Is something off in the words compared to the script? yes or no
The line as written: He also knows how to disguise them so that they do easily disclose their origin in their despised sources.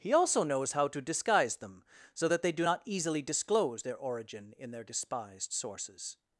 yes